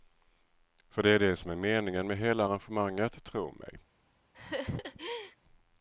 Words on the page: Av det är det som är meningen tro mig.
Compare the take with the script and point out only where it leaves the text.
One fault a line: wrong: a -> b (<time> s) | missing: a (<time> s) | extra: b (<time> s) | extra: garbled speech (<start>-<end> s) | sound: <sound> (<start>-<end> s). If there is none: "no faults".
wrong: Av -> För (0.9 s)
extra: med hela arrangemanget (2.1 s)
sound: laugh (4.3-5.4 s)